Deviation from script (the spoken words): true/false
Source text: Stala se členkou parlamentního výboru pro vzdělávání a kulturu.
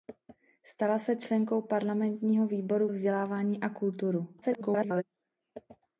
true